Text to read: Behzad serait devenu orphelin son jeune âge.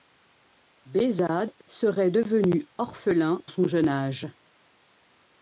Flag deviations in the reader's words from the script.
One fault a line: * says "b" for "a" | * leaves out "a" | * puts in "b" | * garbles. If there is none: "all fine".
all fine